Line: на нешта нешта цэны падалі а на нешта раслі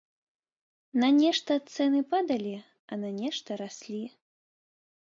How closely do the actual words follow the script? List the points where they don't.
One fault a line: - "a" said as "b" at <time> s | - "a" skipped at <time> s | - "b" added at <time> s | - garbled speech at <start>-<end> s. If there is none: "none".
- "нешта" skipped at 1.5 s